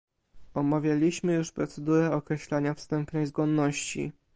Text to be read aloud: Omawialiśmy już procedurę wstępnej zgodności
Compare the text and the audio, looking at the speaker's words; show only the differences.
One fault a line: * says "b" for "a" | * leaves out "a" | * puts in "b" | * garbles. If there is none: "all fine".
* puts in "określania"